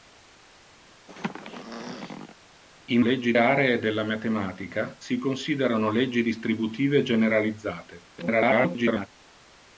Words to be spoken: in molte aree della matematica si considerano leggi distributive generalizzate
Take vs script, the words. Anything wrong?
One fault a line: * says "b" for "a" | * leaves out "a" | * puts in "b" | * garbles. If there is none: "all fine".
* says "leggi" for "molte"
* garbles